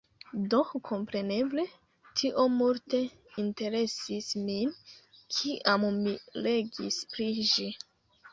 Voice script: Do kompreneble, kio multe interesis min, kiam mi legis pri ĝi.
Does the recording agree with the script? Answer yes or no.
no